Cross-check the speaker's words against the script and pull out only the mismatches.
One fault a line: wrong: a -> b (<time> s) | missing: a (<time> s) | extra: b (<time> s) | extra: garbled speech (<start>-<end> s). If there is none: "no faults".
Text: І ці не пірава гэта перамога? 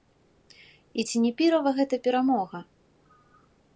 no faults